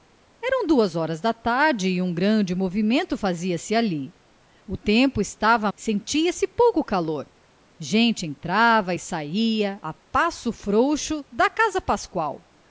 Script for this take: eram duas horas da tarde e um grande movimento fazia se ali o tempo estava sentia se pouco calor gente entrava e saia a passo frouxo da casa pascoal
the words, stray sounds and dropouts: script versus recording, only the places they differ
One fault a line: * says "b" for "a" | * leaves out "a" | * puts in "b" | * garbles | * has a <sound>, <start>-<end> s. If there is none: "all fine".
all fine